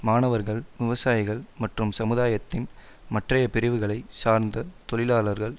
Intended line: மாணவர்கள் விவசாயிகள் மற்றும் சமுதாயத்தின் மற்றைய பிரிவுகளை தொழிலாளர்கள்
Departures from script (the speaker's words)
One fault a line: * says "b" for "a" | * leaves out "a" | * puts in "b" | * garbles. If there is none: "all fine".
* puts in "சார்ந்த"